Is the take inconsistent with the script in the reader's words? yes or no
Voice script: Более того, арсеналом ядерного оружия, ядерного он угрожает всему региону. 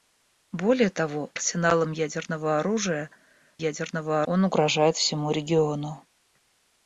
no